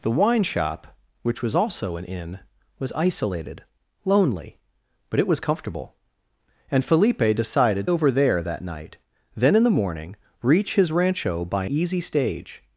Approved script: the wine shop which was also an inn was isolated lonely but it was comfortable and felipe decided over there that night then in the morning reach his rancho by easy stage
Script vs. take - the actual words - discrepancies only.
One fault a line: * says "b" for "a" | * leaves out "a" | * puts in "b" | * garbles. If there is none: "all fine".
all fine